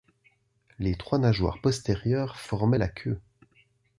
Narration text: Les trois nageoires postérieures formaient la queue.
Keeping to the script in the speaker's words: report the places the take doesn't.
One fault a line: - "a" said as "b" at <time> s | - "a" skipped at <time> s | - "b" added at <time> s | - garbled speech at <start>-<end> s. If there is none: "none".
none